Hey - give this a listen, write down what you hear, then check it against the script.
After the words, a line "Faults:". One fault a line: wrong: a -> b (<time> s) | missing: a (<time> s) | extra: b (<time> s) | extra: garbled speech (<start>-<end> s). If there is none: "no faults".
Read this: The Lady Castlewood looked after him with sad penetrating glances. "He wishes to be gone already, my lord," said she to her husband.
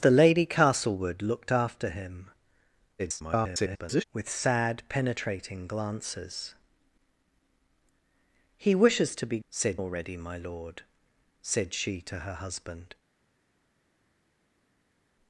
The Lady Castlewood looked after him [garbled] with sad penetrating glances. "He wishes to be said already, my lord," said she to her husband.
Faults:
extra: garbled speech (3.0-4.0 s)
wrong: gone -> said (9.5 s)